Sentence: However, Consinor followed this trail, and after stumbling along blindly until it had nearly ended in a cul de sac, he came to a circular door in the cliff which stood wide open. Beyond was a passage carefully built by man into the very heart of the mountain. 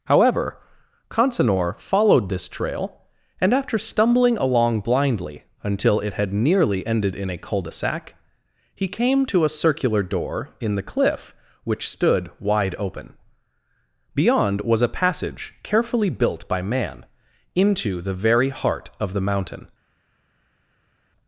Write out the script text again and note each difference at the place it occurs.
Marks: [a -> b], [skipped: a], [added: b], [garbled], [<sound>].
However, Consinor followed this trail, and after stumbling along blindly until it had nearly ended in a cul de sac, he came to a circular door in the cliff which stood wide open. Beyond was a passage carefully built by man into the very heart of the mountain.